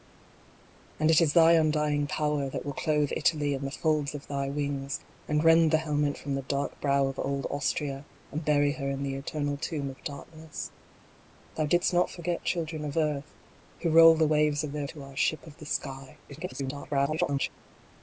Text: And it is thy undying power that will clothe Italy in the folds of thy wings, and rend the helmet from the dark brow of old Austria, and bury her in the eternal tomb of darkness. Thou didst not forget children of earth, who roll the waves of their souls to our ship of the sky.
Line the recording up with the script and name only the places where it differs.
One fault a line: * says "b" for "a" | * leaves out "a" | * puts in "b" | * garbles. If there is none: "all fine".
* leaves out "souls"
* garbles